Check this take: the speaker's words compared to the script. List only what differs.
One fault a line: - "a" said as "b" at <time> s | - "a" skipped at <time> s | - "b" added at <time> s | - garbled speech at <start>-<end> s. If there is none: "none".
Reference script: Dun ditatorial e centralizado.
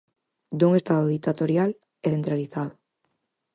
- "estado" added at 0.8 s